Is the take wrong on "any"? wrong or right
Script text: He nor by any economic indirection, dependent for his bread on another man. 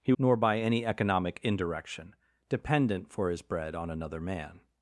right